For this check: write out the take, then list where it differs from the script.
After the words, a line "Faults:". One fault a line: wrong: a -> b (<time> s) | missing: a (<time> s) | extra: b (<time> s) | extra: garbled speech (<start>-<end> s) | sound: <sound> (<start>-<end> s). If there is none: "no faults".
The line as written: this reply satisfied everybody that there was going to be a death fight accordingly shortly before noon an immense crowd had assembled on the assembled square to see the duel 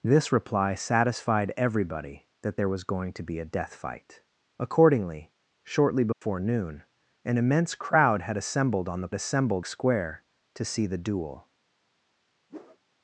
this reply satisfied everybody that there was going to be a death fight accordingly shortly before noon an immense crowd had assembled on the assembled square to see the duel
Faults:
sound: dropout (6.1-6.2 s)
sound: whoosh (12.5-12.8 s)